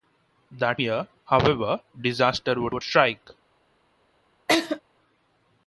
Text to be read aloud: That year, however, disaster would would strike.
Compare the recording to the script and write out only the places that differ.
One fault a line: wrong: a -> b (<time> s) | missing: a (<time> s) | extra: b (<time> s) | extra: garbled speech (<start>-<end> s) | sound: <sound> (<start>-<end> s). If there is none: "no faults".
sound: laugh (4.5-4.8 s)